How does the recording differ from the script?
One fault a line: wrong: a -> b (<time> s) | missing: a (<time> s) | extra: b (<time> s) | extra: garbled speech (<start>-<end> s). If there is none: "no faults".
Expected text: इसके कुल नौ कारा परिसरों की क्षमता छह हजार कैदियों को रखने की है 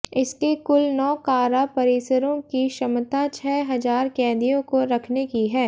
no faults